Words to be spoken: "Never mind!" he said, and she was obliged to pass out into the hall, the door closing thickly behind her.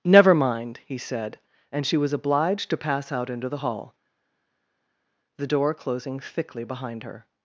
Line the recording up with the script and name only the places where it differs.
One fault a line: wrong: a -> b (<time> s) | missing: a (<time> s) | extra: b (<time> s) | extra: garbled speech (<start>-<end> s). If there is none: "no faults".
no faults